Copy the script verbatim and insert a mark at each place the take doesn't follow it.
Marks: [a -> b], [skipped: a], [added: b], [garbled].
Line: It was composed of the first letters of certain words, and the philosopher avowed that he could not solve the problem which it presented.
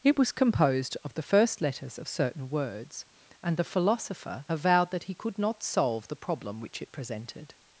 It was composed of the first letters of certain words, and the philosopher avowed that he could not solve the problem which it presented.